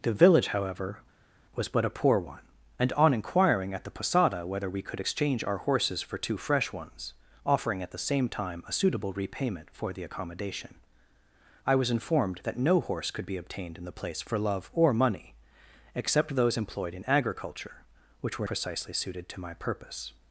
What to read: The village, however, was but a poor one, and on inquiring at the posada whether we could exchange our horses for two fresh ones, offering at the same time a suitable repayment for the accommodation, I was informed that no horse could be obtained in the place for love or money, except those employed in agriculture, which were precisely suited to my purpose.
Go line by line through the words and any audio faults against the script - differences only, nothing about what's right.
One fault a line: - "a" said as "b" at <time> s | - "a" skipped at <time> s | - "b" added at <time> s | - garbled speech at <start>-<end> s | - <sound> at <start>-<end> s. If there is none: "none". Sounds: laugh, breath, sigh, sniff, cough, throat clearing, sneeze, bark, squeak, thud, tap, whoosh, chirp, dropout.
none